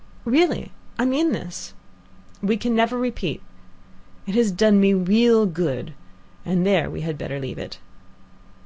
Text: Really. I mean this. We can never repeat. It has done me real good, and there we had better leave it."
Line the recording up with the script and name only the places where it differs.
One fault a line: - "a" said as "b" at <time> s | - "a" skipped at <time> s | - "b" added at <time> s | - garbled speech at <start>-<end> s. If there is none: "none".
none